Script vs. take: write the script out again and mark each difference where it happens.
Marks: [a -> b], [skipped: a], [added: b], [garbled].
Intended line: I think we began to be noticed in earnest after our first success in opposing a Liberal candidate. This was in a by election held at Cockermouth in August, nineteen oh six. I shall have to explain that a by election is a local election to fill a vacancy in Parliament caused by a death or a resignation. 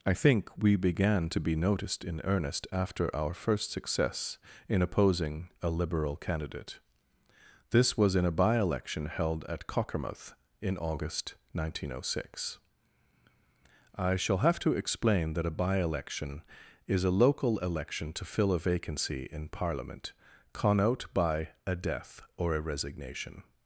I think we began to be noticed in earnest after our first success in opposing a Liberal candidate. This was in a by election held at Cockermouth in August, nineteen oh six. I shall have to explain that a by election is a local election to fill a vacancy in Parliament [caused -> connote] by a death or a resignation.